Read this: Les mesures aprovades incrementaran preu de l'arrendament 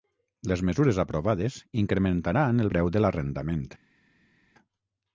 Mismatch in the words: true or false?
false